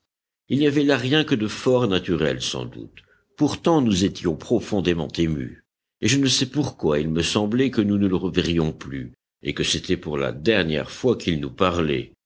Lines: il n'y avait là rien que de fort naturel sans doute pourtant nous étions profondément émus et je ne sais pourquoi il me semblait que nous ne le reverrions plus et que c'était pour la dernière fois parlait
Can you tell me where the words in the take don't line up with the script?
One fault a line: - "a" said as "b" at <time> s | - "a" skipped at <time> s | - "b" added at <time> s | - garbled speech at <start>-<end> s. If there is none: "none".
- "qu'il nous" added at 11.2 s